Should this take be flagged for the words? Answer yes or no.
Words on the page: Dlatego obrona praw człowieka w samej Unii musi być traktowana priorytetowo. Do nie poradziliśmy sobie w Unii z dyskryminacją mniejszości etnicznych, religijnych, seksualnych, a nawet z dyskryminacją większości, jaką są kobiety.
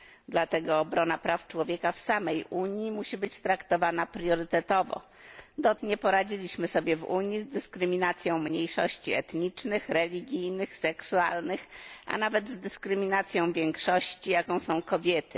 no